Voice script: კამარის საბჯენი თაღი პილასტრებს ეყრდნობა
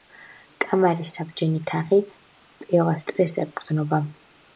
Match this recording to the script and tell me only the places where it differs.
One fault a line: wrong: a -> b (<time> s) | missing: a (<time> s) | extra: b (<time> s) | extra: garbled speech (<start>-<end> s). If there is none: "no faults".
no faults